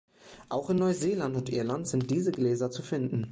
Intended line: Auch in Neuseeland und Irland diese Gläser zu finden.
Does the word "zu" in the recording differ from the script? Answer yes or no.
no